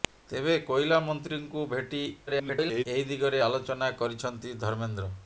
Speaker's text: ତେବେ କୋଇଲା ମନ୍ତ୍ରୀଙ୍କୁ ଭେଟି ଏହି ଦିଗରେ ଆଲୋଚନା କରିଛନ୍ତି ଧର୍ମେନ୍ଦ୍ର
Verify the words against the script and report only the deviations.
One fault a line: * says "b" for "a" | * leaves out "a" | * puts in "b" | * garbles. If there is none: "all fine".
* garbles